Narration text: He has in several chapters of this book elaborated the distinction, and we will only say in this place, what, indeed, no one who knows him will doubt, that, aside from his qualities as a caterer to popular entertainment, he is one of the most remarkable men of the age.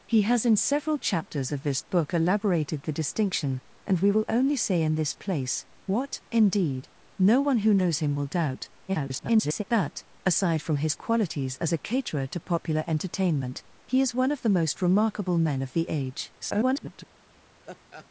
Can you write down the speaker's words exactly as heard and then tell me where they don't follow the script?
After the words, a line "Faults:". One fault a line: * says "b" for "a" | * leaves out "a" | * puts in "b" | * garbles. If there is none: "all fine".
He has in several chapters of this book elaborated the distinction, and we will only say in this place, what, indeed, no one who knows him will doubt, [garbled] that, aside from his qualities as a caterer to popular entertainment, he is one of the most remarkable men of the age. [garbled]
Faults:
* garbles
* garbles